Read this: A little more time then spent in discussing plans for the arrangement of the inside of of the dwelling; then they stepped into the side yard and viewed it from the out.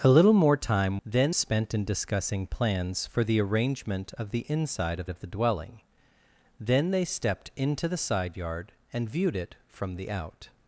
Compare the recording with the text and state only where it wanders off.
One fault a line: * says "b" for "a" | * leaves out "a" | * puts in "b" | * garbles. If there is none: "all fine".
all fine